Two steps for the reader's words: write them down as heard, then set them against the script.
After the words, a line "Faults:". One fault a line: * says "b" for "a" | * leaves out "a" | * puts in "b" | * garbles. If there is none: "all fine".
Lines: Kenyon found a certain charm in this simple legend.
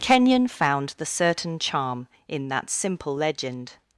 Kenyon found the certain charm in that simple legend.
Faults:
* says "the" for "a"
* says "that" for "this"